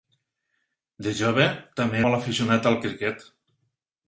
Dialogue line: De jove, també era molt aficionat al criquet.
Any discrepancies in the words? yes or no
yes